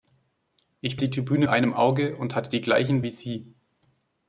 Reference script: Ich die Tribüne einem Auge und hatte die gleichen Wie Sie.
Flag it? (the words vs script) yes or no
no